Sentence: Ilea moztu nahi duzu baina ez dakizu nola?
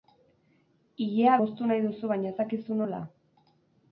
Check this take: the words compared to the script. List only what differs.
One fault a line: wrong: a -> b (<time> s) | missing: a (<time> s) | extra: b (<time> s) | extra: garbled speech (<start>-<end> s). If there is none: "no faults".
no faults